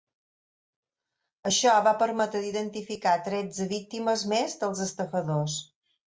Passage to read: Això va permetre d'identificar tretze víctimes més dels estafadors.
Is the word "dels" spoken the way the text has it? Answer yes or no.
yes